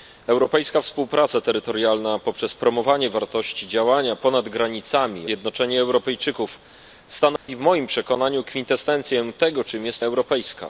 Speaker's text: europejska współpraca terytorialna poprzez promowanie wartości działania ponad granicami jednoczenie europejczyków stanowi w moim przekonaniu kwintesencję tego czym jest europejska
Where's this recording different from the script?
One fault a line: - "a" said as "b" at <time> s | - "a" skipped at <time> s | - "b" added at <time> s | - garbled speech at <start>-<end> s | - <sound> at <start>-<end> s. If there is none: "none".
- dropout at 7.4-7.5 s